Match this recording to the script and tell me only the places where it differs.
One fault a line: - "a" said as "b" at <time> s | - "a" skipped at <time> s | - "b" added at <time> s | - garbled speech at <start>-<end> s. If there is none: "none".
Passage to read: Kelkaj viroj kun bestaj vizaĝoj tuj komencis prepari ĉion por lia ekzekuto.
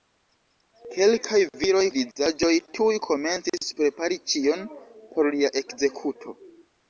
- "kun bestaj" skipped at 1.8 s